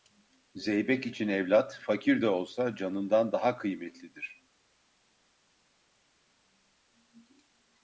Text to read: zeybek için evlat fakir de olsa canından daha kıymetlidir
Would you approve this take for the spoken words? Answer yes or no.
yes